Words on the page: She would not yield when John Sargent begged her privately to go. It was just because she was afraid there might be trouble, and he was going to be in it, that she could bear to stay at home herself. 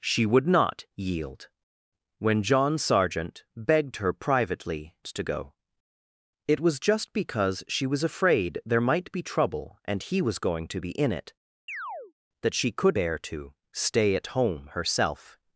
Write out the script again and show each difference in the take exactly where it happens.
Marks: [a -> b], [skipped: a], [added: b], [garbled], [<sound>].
She would not yield when John Sargent begged her privately to go. It was just because she was afraid there might be trouble, and he was going to be in it, [chirp] that she could bear to stay at home herself.